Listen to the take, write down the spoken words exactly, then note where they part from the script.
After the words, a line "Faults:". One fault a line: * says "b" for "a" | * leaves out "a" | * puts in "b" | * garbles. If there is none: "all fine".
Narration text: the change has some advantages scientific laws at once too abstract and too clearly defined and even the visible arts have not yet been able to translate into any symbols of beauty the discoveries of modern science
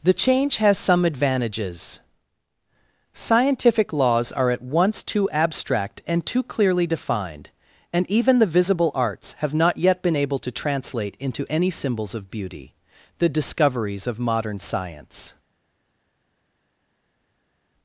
the change has some advantages scientific laws are at once too abstract and too clearly defined and even the visible arts have not yet been able to translate into any symbols of beauty the discoveries of modern science
Faults:
* puts in "are"